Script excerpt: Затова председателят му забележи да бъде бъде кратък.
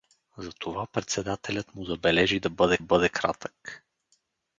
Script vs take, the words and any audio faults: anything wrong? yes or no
no